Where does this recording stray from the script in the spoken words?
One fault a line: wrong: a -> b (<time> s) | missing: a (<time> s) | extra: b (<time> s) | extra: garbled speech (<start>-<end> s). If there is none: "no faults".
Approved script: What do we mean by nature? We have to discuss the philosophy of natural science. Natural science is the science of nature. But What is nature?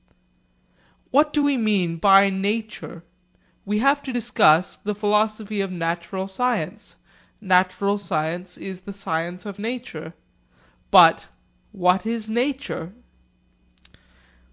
no faults